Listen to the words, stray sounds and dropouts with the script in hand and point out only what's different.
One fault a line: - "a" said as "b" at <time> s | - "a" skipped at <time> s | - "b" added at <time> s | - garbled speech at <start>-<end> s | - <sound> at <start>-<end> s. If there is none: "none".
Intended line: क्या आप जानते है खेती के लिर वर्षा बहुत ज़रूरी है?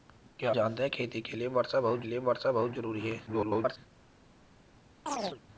- "आप" skipped at 0.5 s
- "लिर वर्षा बहुत" added at 2.1 s
- garbled speech at 3.3-3.8 s
- chirp at 5.1-5.4 s